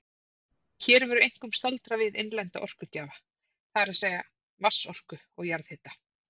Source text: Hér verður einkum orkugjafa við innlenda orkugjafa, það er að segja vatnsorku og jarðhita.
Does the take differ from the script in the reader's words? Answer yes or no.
yes